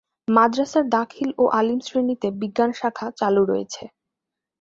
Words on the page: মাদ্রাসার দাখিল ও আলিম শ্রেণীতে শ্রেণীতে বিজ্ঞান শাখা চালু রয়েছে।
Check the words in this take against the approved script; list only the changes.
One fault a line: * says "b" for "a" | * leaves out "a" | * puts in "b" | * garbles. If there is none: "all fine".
* leaves out "শ্রেণীতে"